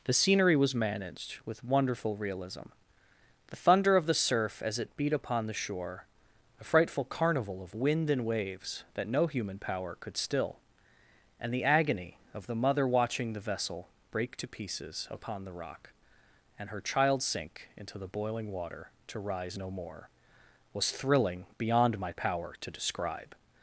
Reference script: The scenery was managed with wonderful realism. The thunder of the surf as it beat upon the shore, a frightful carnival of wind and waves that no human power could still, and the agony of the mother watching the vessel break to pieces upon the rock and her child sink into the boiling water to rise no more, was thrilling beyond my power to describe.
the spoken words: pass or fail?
pass